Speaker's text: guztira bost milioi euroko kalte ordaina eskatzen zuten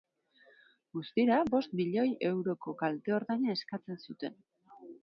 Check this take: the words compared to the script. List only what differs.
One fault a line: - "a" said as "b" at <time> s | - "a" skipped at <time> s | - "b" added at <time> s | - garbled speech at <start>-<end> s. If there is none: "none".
none